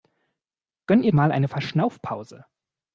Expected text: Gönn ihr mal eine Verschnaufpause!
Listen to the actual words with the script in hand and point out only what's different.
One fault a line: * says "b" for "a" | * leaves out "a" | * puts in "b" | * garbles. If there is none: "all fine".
all fine